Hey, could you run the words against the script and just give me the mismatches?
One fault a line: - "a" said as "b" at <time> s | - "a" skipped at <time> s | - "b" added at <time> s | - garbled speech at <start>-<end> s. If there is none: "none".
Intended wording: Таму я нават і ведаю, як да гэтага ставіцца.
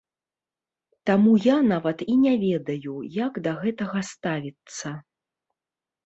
- "не" added at 2.2 s